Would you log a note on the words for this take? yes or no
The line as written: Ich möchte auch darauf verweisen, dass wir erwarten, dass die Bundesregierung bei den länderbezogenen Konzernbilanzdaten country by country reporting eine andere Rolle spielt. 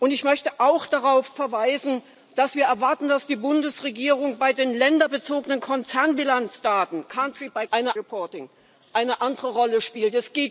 yes